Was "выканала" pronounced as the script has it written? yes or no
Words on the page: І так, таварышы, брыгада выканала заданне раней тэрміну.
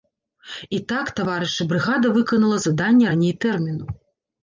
yes